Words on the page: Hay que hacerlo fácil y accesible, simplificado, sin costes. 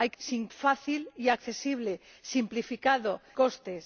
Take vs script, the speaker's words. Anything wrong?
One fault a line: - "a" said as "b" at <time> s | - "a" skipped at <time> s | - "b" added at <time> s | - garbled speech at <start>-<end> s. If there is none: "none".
- "hacerlo" said as "sin" at 0.2 s
- "sin" skipped at 3.2 s